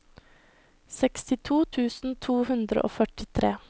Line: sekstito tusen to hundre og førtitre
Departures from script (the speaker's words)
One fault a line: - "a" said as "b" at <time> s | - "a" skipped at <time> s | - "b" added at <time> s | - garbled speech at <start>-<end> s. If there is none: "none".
none